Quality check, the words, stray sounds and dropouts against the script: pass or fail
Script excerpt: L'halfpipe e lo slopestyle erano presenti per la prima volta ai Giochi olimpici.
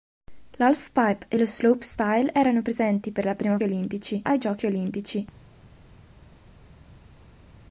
fail